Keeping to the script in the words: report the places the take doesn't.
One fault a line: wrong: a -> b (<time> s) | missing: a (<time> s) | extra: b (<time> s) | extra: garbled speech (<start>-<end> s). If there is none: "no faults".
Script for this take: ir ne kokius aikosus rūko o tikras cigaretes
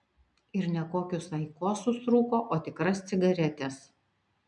no faults